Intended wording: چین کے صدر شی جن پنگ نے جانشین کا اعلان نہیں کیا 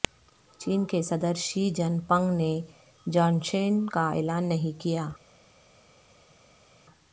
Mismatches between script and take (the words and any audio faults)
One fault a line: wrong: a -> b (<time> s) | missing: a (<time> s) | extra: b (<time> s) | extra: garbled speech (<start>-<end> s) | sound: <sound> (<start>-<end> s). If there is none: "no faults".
no faults